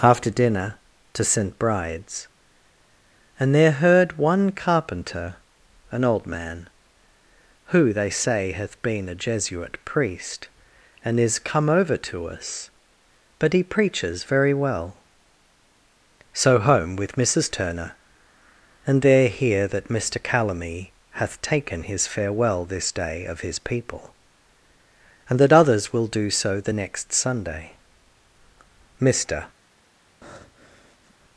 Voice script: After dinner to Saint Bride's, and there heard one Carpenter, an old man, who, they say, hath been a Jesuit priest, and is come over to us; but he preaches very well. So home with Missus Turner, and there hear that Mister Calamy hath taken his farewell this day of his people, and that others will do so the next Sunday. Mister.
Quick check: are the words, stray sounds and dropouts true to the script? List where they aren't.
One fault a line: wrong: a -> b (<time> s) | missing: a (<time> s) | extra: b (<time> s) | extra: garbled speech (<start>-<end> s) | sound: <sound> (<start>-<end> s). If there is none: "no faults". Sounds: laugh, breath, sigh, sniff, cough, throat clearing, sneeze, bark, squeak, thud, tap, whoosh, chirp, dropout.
sound: breath (30.2-31.1 s)